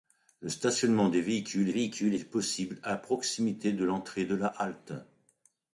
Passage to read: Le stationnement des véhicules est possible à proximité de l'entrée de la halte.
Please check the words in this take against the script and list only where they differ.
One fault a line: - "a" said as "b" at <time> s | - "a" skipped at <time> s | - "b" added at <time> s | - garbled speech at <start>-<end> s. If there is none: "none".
- "véhicules" added at 1.7 s